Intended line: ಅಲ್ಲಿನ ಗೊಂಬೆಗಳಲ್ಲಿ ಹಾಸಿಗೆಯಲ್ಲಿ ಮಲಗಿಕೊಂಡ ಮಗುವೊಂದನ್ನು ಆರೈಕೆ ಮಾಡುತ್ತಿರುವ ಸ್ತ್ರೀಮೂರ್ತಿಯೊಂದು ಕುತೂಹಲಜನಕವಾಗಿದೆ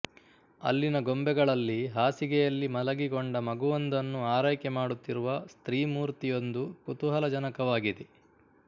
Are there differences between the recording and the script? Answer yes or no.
no